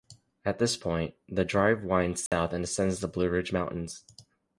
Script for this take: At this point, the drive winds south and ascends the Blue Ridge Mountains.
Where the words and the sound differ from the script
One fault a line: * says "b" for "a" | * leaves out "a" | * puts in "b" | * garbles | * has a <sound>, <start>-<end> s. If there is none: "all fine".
* has a dropout, 2.3-2.3 s